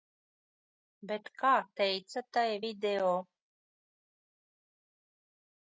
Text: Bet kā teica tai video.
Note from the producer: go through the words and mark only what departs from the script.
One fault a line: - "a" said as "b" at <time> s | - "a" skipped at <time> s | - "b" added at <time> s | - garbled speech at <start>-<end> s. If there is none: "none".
none